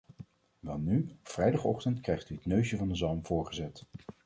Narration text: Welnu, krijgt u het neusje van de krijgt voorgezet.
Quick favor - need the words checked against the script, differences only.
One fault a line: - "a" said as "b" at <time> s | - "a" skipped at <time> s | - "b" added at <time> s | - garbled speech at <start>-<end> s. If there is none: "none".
- "op vrijdagochtend" added at 1.1 s
- "krijgt" said as "zalm" at 2.9 s